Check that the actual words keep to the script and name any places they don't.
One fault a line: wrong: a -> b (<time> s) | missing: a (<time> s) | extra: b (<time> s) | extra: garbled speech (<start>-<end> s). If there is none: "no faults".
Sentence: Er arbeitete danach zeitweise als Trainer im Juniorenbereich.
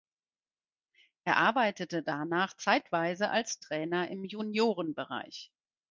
no faults